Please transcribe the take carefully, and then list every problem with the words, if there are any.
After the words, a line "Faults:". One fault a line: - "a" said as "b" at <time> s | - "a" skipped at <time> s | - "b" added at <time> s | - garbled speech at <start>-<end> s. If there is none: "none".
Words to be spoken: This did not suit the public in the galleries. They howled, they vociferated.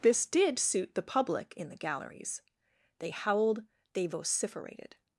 This did suit the public in the galleries. They howled, they vociferated.
Faults:
- "not" skipped at 0.6 s